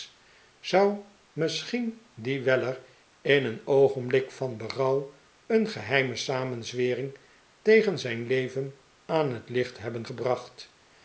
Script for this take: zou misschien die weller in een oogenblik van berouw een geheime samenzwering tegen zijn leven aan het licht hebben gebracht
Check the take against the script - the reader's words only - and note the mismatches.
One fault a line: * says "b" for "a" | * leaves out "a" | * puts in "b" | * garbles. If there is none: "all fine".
all fine